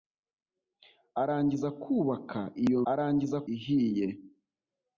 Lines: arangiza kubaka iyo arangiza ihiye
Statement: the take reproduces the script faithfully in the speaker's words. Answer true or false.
true